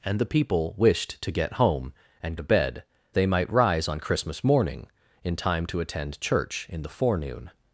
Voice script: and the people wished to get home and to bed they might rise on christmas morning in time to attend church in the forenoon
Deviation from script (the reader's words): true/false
false